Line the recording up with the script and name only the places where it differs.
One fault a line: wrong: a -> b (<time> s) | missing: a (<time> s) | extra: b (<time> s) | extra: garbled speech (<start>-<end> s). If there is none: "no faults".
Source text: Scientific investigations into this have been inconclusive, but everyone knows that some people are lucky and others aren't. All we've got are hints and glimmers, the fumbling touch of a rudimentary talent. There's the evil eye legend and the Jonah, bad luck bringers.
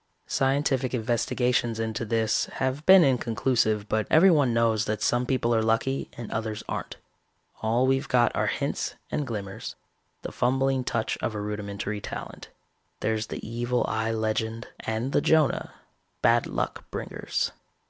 no faults